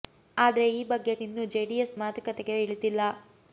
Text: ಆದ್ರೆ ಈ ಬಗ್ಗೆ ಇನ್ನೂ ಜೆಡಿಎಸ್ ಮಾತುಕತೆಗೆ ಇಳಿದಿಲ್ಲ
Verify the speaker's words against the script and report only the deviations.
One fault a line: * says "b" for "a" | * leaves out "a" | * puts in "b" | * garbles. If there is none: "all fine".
all fine